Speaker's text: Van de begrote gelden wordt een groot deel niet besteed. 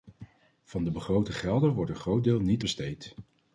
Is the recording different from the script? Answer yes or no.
no